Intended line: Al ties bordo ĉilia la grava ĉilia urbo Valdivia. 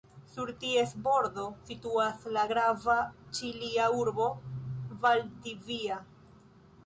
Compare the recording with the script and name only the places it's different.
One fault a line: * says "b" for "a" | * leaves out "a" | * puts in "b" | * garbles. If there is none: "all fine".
* says "Sur" for "Al"
* says "situas" for "ĉilia"